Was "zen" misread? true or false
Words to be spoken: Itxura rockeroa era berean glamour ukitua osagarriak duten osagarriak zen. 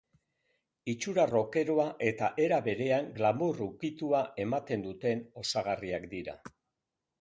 true